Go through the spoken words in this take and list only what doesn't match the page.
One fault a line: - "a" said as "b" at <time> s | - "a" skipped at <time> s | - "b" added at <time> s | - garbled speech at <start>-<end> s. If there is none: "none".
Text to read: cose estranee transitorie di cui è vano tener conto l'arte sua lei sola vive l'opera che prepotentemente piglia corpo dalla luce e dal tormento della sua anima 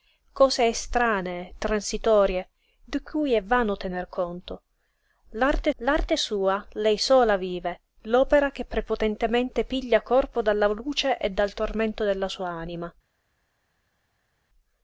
- "l'arte" added at 5.8 s